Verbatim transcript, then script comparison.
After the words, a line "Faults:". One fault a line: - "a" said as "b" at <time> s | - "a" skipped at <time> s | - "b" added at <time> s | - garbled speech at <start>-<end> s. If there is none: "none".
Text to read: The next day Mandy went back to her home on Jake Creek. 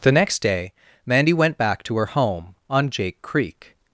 The next day Mandy went back to her home on Jake Creek.
Faults:
none